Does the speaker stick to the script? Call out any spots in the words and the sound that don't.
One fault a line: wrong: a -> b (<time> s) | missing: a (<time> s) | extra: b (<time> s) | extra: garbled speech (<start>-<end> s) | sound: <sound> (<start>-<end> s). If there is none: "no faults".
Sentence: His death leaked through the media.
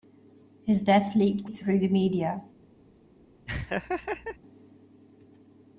sound: laugh (3.5-4.4 s)